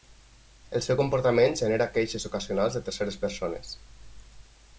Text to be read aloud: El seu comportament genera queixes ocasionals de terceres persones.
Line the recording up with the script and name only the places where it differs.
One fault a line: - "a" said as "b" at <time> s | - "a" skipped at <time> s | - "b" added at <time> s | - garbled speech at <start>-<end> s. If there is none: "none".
none